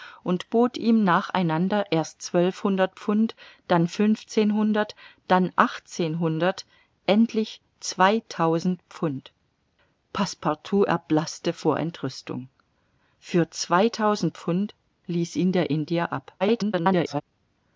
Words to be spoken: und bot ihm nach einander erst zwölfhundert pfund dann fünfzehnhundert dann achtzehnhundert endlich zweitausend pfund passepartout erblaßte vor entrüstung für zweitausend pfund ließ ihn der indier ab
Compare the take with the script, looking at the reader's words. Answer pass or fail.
fail